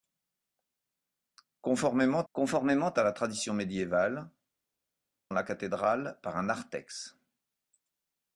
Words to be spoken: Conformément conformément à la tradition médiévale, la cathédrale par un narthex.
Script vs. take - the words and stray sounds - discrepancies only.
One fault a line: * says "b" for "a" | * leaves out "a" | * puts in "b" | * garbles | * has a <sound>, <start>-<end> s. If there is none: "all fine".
all fine